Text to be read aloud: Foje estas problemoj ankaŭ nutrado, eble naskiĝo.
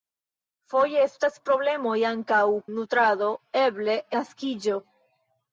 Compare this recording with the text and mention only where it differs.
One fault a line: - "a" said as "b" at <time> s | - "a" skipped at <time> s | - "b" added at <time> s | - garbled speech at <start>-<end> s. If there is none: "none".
none